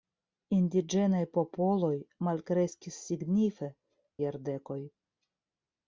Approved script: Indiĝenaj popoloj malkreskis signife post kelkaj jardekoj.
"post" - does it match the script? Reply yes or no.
no